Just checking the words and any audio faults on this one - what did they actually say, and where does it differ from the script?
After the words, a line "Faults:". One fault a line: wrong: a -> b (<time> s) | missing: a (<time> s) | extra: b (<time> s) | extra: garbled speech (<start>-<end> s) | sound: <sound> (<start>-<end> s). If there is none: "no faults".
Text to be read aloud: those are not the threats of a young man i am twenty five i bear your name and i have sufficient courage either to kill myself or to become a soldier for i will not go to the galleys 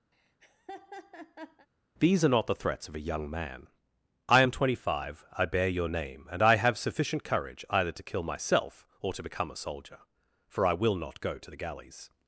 these are not the threats of a young man i am twenty five i bear your name and i have sufficient courage either to kill myself or to become a soldier for i will not go to the galleys
Faults:
sound: laugh (0.1-1.7 s)
wrong: those -> these (2.0 s)